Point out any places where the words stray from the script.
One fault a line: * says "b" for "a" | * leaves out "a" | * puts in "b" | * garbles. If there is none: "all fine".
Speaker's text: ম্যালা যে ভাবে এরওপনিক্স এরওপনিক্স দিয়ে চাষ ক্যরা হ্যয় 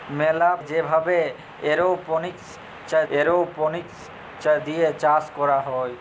all fine